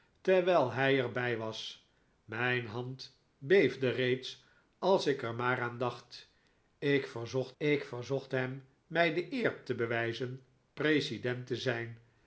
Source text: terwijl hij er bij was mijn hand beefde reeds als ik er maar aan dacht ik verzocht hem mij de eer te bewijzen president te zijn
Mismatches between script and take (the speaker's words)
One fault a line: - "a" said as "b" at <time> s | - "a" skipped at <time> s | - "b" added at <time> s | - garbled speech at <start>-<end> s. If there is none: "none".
- "ik verzocht" added at 7.6 s